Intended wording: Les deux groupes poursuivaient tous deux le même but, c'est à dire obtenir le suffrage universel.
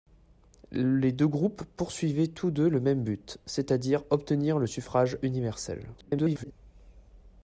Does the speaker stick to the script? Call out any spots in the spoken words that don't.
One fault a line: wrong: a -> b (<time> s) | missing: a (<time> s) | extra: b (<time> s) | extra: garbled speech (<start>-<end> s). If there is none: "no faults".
extra: garbled speech (6.0-6.5 s)